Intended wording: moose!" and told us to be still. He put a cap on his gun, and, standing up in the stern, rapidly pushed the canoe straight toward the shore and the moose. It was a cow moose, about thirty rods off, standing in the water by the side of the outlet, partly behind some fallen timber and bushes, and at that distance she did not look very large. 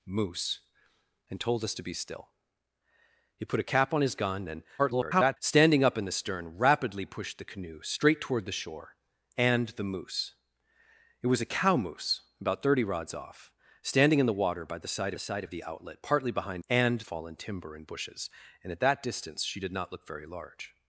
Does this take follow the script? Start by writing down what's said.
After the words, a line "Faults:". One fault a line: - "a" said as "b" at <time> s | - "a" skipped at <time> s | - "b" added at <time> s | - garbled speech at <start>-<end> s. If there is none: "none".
moose!" and told us to be still. He put a cap on his gun, and, [garbled] standing up in the stern, rapidly pushed the canoe straight toward the shore and the moose. It was a cow moose, about thirty rods off, standing in the water by the side side of the outlet, partly behind and fallen timber and bushes, and at that distance she did not look very large.
Faults:
- garbled speech at 4.8-5.4 s
- "side" added at 15.2 s
- "some" said as "and" at 16.7 s